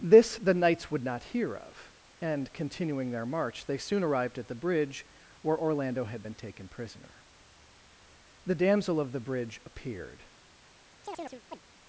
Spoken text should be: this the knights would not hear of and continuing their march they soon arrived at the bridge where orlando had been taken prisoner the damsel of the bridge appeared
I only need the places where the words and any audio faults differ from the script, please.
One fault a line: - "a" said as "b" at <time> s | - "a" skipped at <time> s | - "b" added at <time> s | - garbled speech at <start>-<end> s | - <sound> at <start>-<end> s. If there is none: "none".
- chirp at 11.0-11.6 s